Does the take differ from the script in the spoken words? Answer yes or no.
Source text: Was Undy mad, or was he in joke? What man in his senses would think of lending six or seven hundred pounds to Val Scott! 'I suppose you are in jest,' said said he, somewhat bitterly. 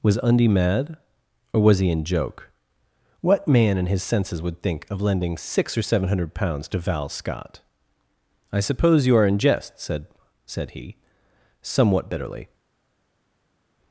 no